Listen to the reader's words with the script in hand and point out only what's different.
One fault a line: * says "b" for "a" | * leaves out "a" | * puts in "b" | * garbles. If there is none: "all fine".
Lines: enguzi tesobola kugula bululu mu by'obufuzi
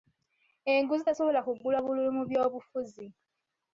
all fine